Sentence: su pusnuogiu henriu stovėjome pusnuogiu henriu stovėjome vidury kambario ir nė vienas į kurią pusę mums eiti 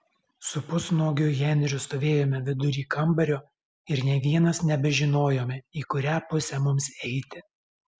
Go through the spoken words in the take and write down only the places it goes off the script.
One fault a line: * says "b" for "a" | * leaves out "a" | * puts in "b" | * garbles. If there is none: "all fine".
* leaves out "pusnuogiu henriu stovėjome"
* puts in "nebežinojome"